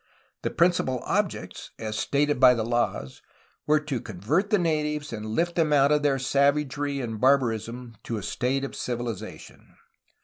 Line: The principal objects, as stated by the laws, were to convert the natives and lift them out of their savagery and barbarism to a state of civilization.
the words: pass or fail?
pass